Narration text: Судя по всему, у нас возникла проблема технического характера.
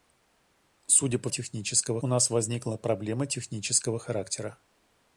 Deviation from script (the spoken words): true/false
true